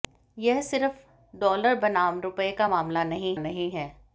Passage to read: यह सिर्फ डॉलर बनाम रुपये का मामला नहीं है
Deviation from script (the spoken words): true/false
true